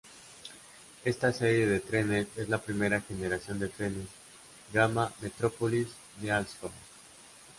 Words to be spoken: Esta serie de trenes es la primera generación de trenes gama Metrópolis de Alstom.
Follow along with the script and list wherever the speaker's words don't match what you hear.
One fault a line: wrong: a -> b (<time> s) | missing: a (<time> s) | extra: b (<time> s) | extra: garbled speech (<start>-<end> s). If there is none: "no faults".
no faults